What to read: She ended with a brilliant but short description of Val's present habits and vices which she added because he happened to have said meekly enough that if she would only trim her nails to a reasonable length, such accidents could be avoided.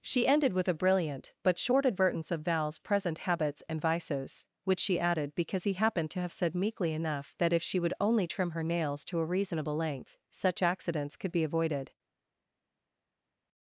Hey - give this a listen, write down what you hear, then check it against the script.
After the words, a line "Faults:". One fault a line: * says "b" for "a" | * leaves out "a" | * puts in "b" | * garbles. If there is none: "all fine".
She ended with a brilliant but short advertence of Val's present habits and vices which she added because he happened to have said meekly enough that if she would only trim her nails to a reasonable length, such accidents could be avoided.
Faults:
* says "advertence" for "description"